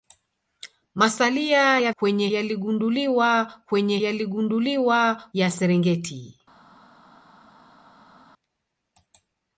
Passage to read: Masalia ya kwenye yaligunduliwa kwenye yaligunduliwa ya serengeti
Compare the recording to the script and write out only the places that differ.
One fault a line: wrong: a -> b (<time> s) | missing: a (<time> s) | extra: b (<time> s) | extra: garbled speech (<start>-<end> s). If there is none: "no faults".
no faults